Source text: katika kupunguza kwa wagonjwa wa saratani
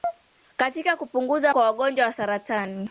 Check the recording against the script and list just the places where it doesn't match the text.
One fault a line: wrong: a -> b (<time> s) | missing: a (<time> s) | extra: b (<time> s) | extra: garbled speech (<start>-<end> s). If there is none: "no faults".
no faults